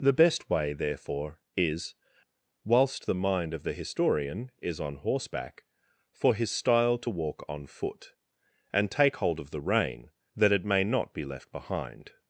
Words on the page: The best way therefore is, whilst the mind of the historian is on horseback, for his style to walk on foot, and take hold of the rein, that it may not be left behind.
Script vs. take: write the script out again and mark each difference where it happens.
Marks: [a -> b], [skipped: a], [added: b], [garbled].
The best way therefore is, whilst the mind of the historian is on horseback, for his style to walk on foot, and take hold of the rein, that it may not be left behind.